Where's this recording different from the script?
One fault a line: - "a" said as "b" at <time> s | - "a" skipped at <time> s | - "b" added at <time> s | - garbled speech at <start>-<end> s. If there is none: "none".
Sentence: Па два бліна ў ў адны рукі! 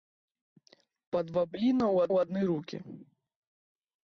none